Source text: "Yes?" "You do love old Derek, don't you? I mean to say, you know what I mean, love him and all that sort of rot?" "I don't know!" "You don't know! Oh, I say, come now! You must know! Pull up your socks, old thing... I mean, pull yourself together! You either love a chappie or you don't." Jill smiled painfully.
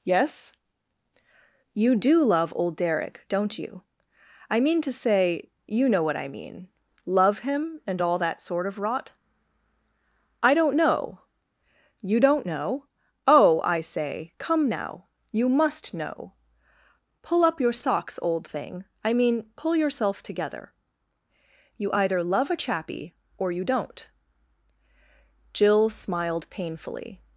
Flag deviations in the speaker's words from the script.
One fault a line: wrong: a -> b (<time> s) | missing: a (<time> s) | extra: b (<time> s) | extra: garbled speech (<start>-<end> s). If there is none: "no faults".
no faults